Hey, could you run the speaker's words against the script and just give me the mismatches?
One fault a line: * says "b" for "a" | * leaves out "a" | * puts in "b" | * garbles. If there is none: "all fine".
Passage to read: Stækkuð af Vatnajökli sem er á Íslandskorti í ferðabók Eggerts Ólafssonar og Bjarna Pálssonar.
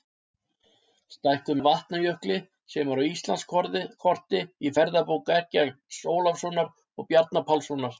all fine